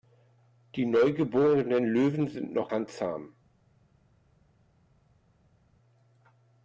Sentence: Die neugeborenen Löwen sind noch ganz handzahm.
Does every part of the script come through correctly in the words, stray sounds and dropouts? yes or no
no